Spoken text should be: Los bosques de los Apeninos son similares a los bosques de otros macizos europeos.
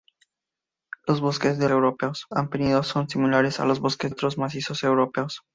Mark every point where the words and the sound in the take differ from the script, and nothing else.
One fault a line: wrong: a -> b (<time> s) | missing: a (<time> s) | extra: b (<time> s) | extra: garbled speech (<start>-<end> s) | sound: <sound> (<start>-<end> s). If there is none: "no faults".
wrong: los -> europeos (1.7 s)
missing: de (4.1 s)